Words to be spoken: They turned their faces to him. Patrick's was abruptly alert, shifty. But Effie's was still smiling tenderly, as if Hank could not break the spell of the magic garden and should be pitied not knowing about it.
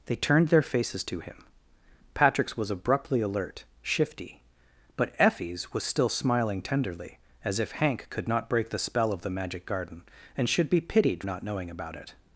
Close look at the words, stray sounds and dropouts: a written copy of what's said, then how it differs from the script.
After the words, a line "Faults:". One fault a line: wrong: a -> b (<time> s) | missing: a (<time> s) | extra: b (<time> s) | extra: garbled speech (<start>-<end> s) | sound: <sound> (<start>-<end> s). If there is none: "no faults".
They turned their faces to him. Patrick's was abruptly alert, shifty. But Effie's was still smiling tenderly, as if Hank could not break the spell of the magic garden and should be pitied not knowing about it.
Faults:
no faults